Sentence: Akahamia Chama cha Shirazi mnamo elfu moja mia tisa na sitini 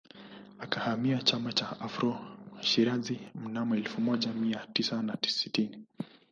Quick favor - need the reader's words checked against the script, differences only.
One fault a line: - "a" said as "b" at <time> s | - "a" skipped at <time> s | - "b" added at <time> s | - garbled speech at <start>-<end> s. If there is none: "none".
- "Afro" added at 1.8 s